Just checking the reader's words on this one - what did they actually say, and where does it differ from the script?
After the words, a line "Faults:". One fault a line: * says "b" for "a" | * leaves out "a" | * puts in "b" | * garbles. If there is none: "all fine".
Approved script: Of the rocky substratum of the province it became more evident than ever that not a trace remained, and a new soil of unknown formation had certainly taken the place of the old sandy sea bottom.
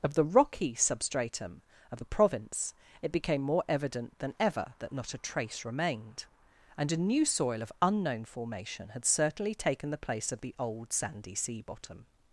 Of the rocky substratum of the province it became more evident than ever that not a trace remained, and a new soil of unknown formation had certainly taken the place of the old sandy sea bottom.
Faults:
all fine